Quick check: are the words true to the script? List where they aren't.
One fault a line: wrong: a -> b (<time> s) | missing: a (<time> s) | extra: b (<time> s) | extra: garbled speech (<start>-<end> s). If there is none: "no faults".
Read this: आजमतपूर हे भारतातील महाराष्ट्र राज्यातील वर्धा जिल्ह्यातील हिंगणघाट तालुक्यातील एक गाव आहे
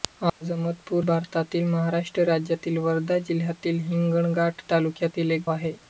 missing: हे (1.1 s)
missing: गाव (5.5 s)